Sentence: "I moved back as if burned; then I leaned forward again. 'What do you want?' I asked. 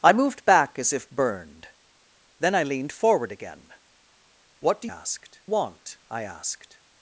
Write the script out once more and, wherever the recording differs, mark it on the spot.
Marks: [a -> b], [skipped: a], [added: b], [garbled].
"I moved back as if burned; then I leaned forward again. 'What do [you -> asked] want?' I asked.